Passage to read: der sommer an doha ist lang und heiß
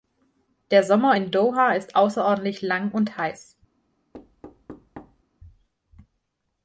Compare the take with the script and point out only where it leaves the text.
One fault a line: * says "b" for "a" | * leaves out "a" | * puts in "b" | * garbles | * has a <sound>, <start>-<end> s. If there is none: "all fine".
* says "in" for "an"
* puts in "außerordentlich"
* has a thud, 4.1-5.2 s